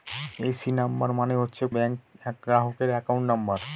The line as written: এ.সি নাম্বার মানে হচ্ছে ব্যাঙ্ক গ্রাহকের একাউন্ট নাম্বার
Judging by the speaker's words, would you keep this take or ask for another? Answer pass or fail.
pass